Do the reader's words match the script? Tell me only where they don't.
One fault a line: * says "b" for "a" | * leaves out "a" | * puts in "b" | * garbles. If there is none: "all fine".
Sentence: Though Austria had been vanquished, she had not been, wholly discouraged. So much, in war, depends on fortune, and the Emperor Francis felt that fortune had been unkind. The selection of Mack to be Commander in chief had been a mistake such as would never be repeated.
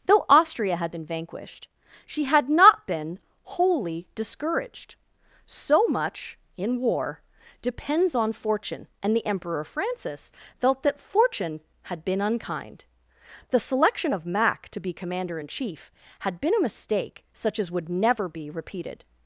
all fine